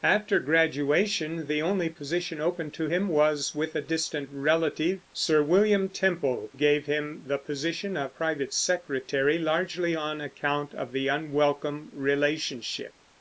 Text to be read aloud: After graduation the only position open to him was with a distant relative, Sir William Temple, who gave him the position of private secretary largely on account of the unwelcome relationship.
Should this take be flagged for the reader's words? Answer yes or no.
yes